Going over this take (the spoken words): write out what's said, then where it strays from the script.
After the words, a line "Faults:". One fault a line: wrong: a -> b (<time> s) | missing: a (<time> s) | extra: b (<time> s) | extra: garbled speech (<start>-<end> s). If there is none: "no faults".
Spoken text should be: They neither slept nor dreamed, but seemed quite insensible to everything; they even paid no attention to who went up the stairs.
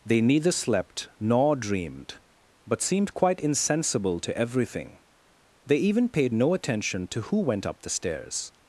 They neither slept nor dreamed, but seemed quite insensible to everything; they even paid no attention to who went up the stairs.
Faults:
no faults